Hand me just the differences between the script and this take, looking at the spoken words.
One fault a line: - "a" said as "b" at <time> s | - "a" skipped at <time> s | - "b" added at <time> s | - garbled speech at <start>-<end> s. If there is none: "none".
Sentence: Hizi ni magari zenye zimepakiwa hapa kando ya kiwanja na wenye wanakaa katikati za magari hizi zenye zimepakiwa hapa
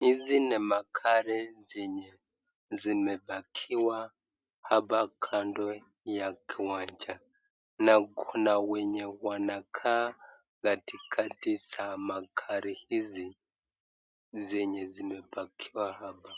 - "kuna" added at 8.0 s